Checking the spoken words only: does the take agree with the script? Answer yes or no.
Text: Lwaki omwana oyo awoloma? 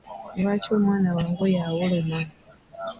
no